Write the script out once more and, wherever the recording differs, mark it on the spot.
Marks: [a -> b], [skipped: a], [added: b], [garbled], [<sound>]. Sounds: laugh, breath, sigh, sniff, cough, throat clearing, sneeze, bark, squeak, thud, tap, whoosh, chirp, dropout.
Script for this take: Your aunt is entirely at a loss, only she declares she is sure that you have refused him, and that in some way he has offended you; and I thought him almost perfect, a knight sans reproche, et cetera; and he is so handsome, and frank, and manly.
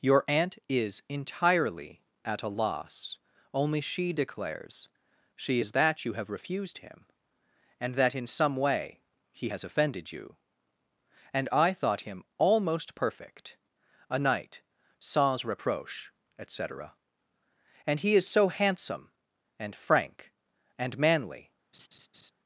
Your aunt is entirely at a loss, only she declares she is [skipped: sure] that you have refused him, and that in some way he has offended you; and I thought him almost perfect, a knight sans reproche, et cetera; and he is so handsome, and frank, and manly. [laugh]